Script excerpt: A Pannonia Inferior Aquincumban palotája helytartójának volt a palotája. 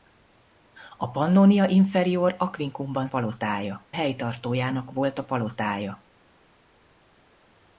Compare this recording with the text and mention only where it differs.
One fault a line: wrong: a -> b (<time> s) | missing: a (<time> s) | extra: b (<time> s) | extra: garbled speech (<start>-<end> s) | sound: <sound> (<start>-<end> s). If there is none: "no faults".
no faults